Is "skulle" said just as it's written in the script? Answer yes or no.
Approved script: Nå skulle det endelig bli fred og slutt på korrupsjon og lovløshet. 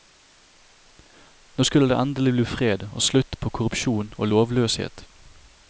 yes